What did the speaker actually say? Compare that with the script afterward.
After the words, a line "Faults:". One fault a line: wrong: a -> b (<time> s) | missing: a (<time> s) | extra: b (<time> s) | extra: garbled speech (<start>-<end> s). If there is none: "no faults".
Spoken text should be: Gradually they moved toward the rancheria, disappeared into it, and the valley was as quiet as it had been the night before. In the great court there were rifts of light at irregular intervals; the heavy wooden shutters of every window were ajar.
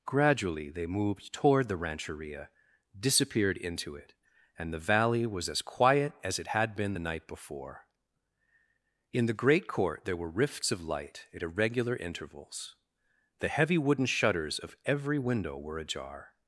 Gradually they moved toward the rancheria, disappeared into it, and the valley was as quiet as it had been the night before. In the great court there were rifts of light at irregular intervals; the heavy wooden shutters of every window were ajar.
Faults:
no faults